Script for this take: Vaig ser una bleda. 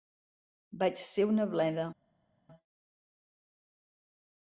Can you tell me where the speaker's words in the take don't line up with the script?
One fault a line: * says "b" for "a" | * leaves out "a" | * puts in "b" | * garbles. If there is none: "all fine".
all fine